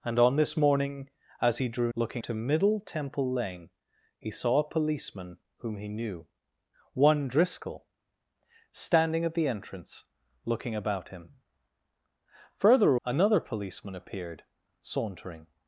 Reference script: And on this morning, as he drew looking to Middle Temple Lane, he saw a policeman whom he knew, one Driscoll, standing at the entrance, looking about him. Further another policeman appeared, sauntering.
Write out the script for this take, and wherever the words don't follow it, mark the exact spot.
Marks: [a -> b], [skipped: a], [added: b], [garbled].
And on this morning, as he drew looking to Middle Temple Lane, he saw a policeman whom he knew, one Driscoll, standing at the entrance, looking about him. Further another policeman appeared, sauntering.